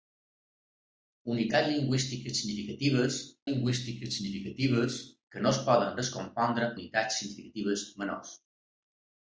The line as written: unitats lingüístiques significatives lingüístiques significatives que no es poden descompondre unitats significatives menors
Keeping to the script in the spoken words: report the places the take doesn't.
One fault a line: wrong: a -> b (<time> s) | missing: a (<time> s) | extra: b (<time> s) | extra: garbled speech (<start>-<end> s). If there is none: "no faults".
no faults